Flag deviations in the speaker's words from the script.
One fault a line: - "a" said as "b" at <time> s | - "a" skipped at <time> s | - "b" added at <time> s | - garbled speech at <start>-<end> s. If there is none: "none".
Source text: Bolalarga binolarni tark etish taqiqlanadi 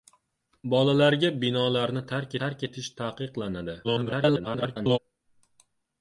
- "tark" added at 2.4 s
- garbled speech at 3.8-5.0 s